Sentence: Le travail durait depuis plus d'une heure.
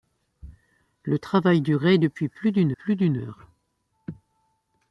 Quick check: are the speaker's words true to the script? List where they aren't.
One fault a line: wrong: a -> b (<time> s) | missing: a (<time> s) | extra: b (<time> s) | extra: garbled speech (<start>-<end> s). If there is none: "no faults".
extra: plus d'une (2.7 s)